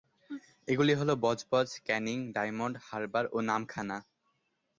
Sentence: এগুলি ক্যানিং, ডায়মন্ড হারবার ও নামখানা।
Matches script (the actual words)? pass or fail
fail